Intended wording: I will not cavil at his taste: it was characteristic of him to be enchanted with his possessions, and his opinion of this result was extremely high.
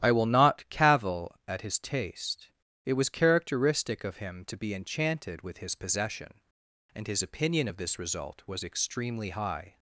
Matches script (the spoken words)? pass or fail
fail